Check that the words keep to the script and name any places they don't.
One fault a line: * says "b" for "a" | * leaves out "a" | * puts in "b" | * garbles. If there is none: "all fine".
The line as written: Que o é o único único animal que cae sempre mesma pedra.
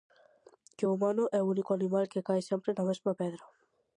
* puts in "humano"
* leaves out "único"
* puts in "na"